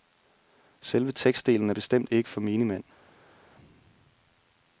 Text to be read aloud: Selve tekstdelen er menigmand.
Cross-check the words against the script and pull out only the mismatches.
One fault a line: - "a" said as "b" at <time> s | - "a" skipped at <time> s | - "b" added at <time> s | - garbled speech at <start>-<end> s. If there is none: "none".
- "bestemt ikke for" added at 1.7 s